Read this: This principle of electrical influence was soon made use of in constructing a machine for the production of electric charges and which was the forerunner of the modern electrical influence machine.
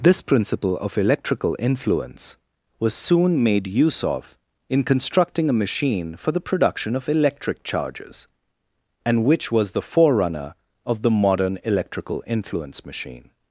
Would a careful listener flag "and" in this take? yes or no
no